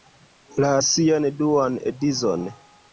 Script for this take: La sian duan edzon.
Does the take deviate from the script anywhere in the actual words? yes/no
no